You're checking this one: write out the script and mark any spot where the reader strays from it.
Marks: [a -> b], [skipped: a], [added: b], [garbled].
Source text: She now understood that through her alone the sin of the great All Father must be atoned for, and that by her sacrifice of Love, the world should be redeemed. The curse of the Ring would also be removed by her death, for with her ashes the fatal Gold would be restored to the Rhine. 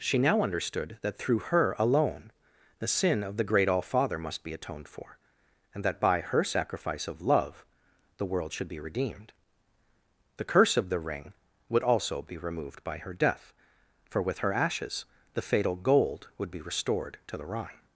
She now understood that through her alone the sin of the great All Father must be atoned for, and that by her sacrifice of Love, the world should be redeemed. The curse of the Ring would also be removed by her death, for with her ashes the fatal Gold would be restored to the Rhine.